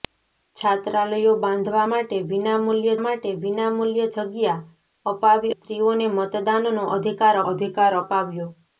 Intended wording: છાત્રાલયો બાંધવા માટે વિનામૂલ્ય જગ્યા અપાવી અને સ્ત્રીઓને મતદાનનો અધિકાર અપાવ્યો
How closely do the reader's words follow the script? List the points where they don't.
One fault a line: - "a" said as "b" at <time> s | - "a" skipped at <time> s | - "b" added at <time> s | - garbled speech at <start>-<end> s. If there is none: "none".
- "માટે વિનામૂલ્ય" added at 3.0 s
- "અને" skipped at 5.5 s
- "અધિકાર" added at 7.5 s